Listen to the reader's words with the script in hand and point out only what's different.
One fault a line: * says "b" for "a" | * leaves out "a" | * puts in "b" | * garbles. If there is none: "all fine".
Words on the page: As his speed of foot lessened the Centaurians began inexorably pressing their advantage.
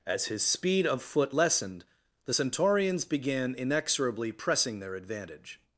all fine